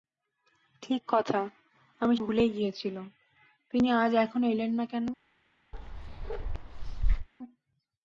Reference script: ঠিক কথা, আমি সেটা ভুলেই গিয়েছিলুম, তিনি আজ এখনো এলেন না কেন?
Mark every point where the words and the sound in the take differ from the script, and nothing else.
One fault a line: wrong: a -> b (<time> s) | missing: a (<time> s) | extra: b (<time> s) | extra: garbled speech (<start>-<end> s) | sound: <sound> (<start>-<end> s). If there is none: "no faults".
missing: সেটা (2.1 s)
sound: bark (5.7-7.3 s)